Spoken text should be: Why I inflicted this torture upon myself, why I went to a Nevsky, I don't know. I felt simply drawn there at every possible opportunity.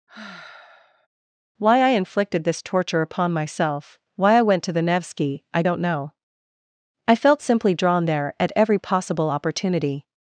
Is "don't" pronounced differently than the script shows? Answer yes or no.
no